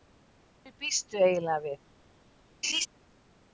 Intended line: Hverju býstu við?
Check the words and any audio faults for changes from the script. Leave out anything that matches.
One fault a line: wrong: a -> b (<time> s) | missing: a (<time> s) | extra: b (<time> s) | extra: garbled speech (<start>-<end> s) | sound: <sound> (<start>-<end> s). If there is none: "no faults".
extra: eiginlega (1.2 s)
sound: laugh (2.6-2.9 s)